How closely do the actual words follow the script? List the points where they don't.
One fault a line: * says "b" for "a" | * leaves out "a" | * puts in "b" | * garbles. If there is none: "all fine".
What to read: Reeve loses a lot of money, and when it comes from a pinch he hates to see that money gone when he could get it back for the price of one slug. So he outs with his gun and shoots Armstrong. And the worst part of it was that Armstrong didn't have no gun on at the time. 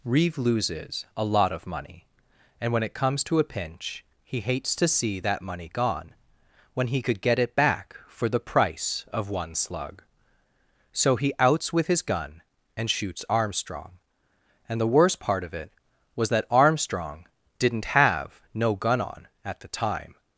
* says "to" for "from"